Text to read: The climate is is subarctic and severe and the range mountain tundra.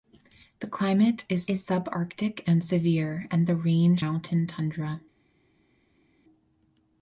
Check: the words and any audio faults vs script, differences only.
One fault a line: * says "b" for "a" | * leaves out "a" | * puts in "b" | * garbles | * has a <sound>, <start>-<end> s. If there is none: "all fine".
all fine